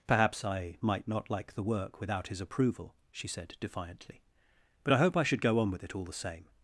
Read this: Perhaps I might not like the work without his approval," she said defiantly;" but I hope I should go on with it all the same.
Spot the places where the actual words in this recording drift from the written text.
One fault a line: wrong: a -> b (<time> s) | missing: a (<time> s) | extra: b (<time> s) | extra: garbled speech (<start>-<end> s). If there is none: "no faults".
no faults